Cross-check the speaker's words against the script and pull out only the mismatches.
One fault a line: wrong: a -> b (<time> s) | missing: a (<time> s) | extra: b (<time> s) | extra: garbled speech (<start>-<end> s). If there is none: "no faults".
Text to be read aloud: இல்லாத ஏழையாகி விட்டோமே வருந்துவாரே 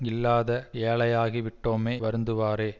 no faults